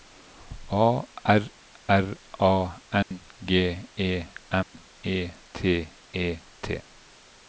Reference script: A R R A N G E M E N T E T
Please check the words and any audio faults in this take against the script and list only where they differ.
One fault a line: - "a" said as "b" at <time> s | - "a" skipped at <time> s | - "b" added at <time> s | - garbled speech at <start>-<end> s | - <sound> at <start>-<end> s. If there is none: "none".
- dropout at 3.0-3.1 s
- dropout at 4.6-4.7 s
- "N" skipped at 5.3 s